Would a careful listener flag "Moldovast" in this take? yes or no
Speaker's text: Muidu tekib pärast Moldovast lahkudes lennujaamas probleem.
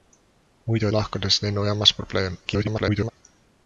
yes